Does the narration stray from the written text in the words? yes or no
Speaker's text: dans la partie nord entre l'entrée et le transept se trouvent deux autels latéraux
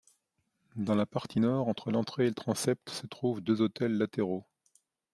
no